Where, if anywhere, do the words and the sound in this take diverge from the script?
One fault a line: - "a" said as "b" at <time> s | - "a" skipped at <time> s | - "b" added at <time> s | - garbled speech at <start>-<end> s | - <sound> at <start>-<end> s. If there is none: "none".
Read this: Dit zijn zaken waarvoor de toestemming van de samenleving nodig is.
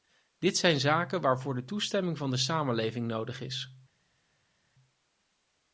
none